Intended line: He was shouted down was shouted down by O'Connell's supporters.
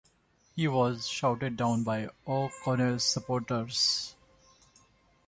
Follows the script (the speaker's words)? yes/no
no